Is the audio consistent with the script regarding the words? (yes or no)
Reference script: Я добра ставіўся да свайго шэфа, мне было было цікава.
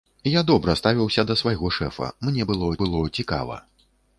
yes